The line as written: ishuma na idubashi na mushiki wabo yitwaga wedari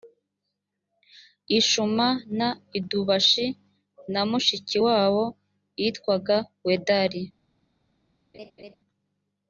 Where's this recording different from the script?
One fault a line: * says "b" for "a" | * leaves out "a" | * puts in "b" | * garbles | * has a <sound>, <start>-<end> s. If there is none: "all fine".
* has a laugh, 8.3-8.8 s